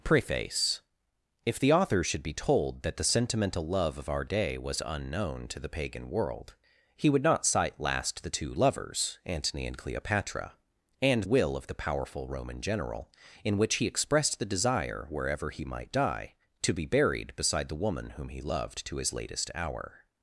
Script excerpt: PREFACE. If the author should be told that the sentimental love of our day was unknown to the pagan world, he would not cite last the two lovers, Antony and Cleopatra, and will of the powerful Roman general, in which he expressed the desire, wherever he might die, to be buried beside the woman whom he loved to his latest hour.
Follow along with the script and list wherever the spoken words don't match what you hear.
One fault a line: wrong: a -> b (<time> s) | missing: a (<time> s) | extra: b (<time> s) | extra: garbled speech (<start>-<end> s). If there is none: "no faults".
no faults